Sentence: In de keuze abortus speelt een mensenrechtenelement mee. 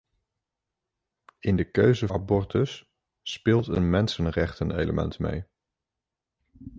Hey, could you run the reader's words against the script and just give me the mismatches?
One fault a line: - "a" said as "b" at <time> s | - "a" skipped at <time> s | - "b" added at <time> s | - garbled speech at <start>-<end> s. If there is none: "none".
none